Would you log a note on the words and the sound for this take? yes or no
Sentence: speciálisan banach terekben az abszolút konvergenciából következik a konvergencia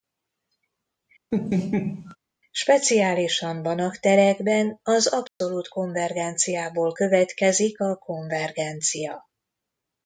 yes